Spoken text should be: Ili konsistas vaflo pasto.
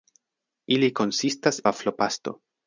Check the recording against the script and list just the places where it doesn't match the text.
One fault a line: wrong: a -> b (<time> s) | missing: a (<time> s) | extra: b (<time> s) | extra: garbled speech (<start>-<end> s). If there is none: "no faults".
no faults